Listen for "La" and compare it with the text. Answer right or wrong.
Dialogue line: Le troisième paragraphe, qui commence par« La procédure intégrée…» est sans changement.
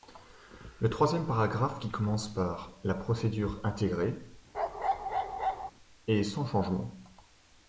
right